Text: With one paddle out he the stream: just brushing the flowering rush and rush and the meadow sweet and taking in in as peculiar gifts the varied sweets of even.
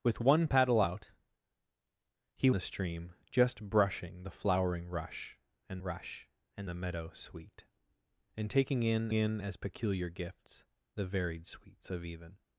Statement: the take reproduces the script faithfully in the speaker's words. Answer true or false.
true